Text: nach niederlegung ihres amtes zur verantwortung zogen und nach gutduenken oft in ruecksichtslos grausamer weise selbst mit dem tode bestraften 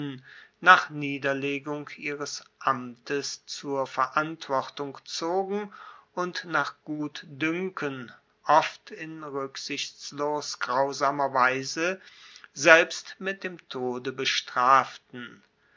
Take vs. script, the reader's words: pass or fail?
pass